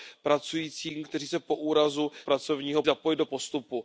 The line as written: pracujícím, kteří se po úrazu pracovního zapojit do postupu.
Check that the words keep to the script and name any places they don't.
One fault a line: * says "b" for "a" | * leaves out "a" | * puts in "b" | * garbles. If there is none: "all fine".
all fine